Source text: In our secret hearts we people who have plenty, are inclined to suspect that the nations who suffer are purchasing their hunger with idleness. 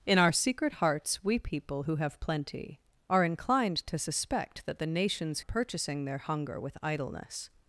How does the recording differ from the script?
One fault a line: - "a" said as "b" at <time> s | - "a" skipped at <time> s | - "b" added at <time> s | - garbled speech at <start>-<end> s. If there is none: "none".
- "who suffer are" skipped at 5.4 s